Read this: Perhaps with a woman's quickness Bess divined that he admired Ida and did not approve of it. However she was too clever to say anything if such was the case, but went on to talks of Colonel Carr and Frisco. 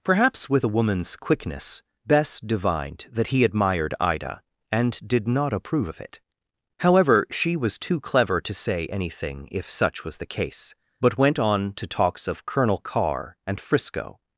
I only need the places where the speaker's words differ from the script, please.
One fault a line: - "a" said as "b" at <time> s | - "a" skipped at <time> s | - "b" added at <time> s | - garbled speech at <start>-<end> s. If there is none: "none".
none